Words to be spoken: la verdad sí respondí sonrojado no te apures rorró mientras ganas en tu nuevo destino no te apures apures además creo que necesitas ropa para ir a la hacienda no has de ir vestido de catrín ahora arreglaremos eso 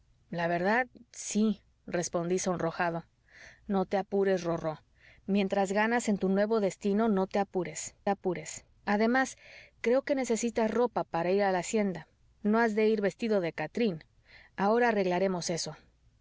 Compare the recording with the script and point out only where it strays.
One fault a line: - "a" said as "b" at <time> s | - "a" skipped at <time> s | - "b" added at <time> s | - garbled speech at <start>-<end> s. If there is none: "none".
none